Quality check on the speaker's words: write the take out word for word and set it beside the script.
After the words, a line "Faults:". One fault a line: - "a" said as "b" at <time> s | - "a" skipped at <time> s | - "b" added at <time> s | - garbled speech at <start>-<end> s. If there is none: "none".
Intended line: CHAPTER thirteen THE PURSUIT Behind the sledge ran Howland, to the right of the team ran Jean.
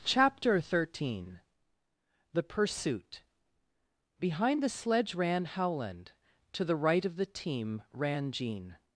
CHAPTER thirteen THE PURSUIT Behind the sledge ran Howland, to the right of the team ran Jean.
Faults:
none